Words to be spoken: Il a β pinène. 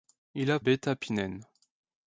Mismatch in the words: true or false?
false